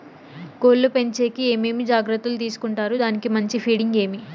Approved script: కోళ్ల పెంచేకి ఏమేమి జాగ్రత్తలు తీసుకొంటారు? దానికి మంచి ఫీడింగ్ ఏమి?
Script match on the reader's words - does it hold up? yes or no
yes